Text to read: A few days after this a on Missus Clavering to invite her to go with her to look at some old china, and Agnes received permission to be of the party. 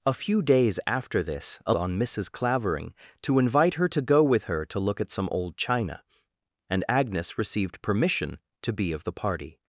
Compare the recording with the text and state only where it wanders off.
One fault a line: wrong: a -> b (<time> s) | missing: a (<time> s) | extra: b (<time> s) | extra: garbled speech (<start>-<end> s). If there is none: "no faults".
no faults